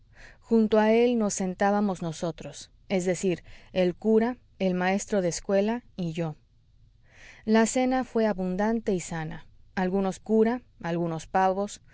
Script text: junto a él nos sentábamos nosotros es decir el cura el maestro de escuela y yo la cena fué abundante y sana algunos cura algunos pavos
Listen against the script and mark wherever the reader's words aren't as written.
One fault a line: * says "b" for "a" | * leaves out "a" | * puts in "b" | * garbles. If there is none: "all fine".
all fine